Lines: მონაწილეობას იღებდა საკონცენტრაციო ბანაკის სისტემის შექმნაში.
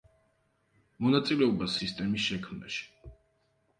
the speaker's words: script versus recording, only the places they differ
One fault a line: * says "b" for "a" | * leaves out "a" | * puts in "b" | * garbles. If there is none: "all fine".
* leaves out "იღებდა საკონცენტრაციო ბანაკის"